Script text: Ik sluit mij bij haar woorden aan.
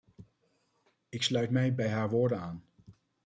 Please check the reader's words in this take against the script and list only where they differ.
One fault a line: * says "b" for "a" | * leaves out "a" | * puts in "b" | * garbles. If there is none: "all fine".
all fine